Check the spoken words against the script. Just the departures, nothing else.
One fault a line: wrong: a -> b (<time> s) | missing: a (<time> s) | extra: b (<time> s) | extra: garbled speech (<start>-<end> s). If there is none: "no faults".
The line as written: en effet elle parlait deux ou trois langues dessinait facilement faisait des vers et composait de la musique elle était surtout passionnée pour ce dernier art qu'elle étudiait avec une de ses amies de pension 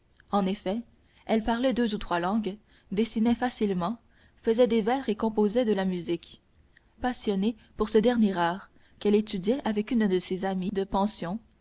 missing: elle était surtout (6.4 s)